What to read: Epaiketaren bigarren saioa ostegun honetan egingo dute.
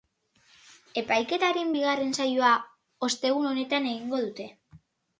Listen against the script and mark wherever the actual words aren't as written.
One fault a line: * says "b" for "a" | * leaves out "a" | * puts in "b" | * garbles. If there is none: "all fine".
all fine